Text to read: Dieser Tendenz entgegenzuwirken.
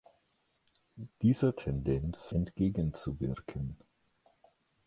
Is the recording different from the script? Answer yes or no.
no